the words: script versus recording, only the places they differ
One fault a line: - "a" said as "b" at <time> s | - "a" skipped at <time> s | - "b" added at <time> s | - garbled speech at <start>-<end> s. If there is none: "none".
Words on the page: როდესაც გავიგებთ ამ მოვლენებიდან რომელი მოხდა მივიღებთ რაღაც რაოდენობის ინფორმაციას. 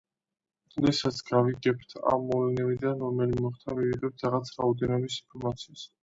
none